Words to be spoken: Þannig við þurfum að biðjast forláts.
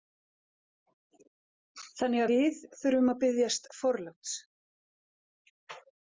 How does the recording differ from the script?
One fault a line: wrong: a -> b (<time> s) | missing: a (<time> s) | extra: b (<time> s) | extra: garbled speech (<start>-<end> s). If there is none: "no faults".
no faults